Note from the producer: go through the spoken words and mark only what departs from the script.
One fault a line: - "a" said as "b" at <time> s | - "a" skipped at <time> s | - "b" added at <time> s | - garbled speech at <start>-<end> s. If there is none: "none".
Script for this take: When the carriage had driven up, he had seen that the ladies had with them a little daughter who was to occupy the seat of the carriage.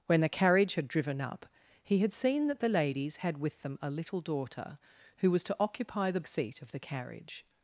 none